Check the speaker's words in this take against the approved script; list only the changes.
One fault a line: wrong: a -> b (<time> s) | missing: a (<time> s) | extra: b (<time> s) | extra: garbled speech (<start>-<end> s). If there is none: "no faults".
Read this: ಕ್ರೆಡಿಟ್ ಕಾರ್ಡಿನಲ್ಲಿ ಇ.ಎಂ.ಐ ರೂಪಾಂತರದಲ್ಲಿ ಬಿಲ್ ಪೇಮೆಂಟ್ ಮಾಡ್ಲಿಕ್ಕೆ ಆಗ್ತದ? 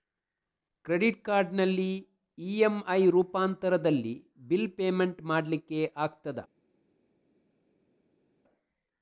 no faults